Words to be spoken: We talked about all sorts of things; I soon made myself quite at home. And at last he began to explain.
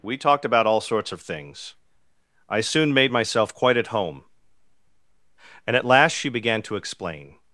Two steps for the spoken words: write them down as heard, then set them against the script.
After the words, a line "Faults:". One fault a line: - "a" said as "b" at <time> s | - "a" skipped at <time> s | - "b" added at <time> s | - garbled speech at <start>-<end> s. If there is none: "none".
We talked about all sorts of things; I soon made myself quite at home. And at last she began to explain.
Faults:
- "he" said as "she" at 6.1 s